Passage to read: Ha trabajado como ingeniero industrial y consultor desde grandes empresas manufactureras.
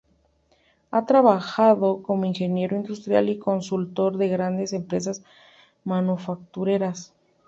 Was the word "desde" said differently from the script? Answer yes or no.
yes